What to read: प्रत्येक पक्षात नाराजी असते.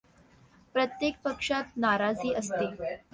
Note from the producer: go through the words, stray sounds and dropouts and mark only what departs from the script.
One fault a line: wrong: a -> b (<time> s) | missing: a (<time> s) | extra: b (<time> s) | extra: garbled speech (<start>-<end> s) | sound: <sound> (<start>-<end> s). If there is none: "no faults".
no faults